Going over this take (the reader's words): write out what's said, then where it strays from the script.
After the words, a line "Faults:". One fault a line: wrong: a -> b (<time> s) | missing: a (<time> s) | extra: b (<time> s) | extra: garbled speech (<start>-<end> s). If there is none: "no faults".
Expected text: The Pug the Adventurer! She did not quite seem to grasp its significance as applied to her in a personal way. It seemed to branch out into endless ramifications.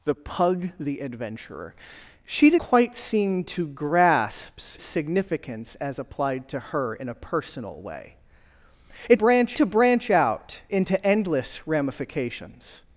The Pug the Adventurer! She did quite seem to grasp significance as applied to her in a personal way. It branch to branch out into endless ramifications.
Faults:
missing: not (2.6 s)
missing: its (4.6 s)
wrong: seemed -> branch (9.1 s)